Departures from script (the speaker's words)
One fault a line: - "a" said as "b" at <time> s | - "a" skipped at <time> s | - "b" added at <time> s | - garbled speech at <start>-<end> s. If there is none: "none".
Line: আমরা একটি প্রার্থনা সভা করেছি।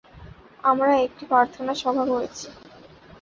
none